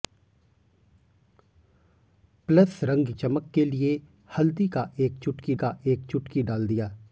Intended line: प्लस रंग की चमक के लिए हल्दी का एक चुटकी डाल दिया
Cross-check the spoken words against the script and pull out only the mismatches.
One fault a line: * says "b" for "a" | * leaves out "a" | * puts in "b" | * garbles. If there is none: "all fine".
* leaves out "की"
* puts in "का एक चुटकी"